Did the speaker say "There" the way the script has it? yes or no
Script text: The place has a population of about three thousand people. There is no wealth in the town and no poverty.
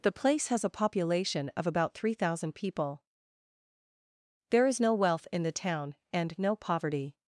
yes